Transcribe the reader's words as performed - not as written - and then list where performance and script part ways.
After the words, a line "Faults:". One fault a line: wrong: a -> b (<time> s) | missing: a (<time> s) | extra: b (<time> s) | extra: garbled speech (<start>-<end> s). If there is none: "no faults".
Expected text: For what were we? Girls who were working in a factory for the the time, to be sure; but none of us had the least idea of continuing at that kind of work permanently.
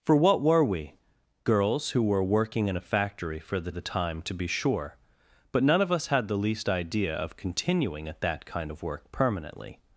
For what were we? Girls who were working in a factory for the the time, to be sure; but none of us had the least idea of continuing at that kind of work permanently.
Faults:
no faults